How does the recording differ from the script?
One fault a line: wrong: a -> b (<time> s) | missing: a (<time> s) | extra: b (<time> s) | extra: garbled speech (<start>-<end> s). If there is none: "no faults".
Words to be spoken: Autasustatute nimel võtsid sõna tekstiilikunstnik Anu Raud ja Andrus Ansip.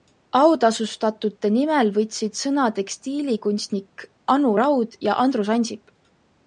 no faults